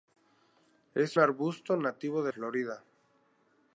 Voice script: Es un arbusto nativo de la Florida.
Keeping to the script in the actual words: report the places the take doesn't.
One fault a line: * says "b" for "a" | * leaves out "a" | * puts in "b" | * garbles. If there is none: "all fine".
* leaves out "un"
* leaves out "la"